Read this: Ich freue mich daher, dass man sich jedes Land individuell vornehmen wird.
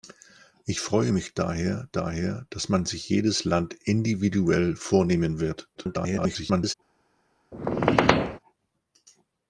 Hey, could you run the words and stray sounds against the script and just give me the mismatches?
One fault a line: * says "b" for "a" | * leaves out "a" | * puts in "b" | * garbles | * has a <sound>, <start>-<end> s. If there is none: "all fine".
* puts in "daher"
* garbles
* has a squeak, 7.5-8.4 s